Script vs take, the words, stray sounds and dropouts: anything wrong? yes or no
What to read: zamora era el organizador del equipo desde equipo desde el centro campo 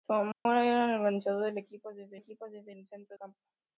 yes